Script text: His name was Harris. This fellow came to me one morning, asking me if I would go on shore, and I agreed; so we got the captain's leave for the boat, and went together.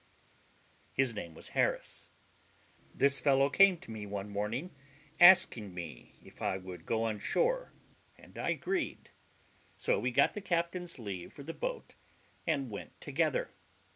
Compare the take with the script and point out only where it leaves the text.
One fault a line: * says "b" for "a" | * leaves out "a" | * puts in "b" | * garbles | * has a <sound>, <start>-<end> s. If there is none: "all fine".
all fine